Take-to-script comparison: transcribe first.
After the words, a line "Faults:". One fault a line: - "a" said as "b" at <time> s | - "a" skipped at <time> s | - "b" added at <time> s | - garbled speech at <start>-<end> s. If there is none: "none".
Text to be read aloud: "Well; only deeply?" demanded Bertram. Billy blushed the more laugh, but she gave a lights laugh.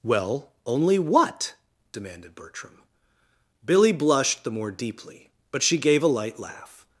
"Well; only what?" demanded Bertram. Billy blushed the more deeply, but she gave a light laugh.
Faults:
- "deeply" said as "what" at 1.0 s
- "laugh" said as "deeply" at 4.7 s
- "lights" said as "light" at 6.1 s